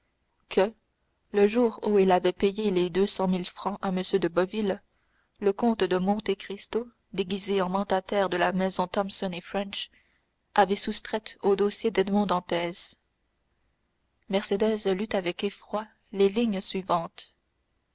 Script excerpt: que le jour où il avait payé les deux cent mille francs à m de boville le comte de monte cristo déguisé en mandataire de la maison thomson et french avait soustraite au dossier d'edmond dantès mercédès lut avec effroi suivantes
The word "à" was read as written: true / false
true